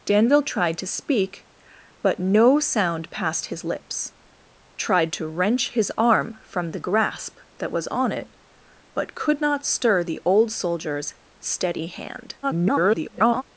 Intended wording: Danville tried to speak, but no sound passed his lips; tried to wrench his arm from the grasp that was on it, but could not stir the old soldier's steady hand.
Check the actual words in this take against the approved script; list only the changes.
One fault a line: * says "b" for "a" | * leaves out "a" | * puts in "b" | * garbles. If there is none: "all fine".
* garbles